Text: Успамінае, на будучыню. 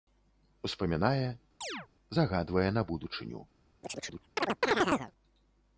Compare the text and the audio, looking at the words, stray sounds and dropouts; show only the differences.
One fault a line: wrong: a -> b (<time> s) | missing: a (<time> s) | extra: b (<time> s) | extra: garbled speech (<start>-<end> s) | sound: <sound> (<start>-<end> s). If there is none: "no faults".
sound: chirp (1.6-1.9 s)
extra: загадвае (2.2 s)
sound: chirp (3.8-5.1 s)